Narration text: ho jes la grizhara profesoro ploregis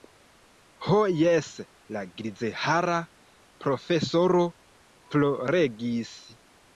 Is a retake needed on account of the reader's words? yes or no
no